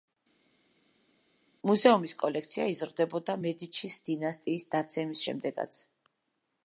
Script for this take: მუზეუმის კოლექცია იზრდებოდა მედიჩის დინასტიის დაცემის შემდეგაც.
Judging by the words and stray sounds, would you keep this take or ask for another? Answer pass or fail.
pass